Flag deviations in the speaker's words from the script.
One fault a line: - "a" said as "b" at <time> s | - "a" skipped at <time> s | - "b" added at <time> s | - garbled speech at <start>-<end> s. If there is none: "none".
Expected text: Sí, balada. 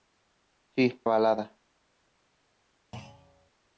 none